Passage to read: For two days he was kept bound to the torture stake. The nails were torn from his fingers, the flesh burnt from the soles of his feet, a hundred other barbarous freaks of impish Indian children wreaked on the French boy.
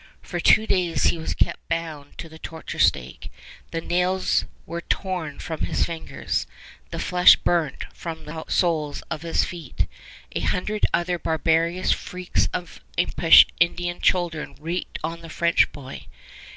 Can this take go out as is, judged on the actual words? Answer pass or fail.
pass